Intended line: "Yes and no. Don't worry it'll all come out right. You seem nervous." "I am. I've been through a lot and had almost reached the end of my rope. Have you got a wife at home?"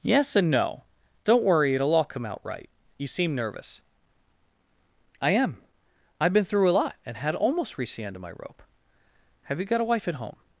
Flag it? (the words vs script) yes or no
no